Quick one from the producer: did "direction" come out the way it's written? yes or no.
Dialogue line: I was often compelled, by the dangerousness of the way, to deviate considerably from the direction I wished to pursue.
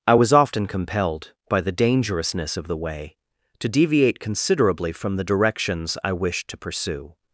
no